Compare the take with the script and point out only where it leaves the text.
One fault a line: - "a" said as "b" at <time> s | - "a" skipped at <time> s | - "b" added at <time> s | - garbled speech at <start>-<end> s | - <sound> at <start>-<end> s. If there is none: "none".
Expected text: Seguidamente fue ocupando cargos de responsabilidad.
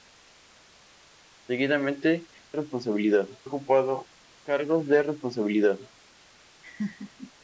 - "fue" said as "responsabilidad" at 2.5 s
- laugh at 6.6-7.3 s